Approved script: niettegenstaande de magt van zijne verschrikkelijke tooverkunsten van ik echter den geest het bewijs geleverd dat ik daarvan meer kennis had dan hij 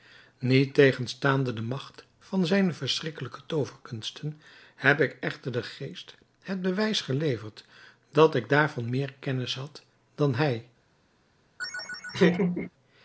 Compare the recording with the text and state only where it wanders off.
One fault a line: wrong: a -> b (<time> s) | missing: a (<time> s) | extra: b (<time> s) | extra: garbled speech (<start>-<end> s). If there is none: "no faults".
wrong: van -> heb (4.8 s)